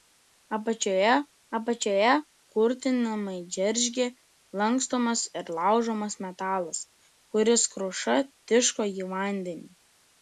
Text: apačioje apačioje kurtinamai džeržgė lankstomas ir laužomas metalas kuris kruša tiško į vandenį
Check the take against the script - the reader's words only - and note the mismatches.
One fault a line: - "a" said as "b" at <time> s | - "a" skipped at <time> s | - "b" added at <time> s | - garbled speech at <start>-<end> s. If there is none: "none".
none